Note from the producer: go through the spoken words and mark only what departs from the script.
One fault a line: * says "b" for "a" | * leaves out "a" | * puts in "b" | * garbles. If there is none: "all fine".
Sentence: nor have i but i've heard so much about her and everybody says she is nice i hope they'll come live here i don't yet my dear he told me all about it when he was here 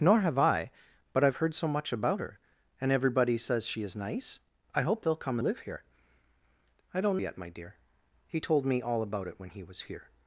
all fine